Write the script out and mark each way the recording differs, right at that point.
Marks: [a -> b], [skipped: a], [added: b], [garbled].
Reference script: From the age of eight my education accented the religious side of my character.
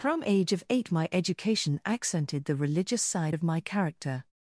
From [skipped: the] age of eight my education accented the religious side of my character.